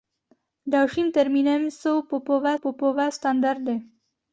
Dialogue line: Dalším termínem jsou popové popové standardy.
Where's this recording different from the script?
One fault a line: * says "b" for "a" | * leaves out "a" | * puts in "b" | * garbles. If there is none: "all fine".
all fine